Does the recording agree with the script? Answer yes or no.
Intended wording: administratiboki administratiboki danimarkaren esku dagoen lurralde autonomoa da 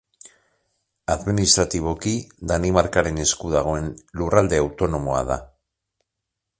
no